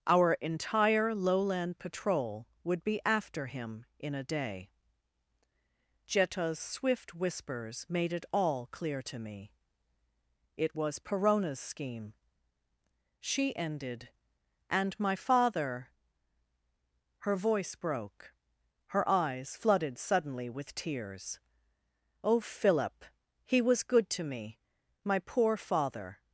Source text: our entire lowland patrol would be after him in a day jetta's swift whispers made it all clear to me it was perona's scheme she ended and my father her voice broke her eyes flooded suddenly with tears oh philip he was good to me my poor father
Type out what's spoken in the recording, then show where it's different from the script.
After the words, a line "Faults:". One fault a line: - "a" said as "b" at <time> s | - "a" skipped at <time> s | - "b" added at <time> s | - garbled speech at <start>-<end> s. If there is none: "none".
our entire lowland patrol would be after him in a day jetta's swift whispers made it all clear to me it was perona's scheme she ended and my father her voice broke her eyes flooded suddenly with tears oh philip he was good to me my poor father
Faults:
none